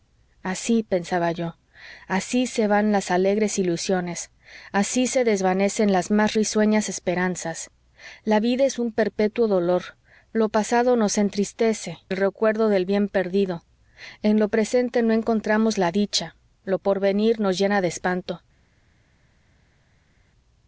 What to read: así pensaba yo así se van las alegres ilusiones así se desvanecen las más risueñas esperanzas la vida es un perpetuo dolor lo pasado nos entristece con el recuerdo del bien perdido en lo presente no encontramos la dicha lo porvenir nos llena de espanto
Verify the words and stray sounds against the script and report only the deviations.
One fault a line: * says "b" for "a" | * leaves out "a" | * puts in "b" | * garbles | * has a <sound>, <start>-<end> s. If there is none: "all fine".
* leaves out "con"